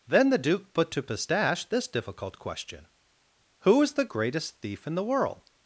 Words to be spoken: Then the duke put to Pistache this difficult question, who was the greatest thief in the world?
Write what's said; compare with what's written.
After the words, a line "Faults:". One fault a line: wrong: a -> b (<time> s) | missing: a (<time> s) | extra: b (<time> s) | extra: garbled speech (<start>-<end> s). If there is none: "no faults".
Then the duke put to Pistache this difficult question, who is the greatest thief in the world?
Faults:
wrong: was -> is (3.8 s)